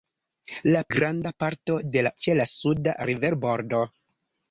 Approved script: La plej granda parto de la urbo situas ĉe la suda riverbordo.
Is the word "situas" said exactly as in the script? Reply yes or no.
no